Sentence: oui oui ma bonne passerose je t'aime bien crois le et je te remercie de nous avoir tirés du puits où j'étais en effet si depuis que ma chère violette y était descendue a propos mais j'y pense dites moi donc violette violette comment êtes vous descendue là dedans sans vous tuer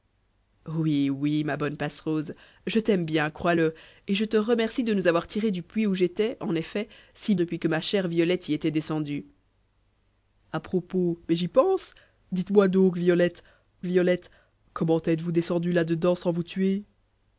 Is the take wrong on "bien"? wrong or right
right